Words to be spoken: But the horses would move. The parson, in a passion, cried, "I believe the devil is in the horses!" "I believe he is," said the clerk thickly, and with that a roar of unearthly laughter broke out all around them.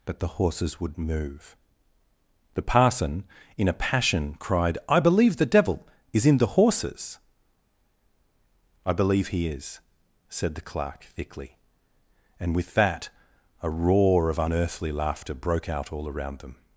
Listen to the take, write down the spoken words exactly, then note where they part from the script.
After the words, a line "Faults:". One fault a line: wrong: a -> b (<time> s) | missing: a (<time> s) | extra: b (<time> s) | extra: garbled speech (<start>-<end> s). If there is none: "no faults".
But the horses would move. The parson, in a passion, cried, "I believe the devil is in the horses!" "I believe he is," said the clerk thickly, and with that a roar of unearthly laughter broke out all around them.
Faults:
no faults